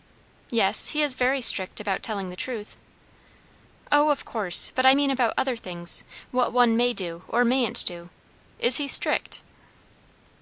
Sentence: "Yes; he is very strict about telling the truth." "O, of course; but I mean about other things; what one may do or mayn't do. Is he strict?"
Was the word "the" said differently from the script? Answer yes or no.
no